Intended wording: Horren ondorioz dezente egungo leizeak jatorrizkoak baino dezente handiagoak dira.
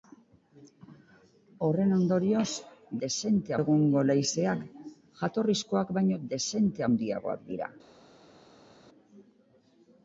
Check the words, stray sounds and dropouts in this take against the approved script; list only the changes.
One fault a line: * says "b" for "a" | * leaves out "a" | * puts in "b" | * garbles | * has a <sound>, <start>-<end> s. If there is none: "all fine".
all fine